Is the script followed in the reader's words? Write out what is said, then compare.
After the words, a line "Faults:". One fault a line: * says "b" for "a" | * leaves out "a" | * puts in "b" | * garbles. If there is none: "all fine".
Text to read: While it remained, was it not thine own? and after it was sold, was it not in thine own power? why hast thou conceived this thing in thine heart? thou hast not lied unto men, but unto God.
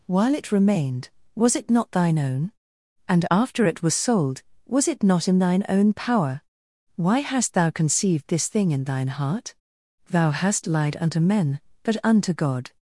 While it remained, was it not thine own? and after it was sold, was it not in thine own power? why hast thou conceived this thing in thine heart? thou hast lied unto men, but unto God.
Faults:
* leaves out "not"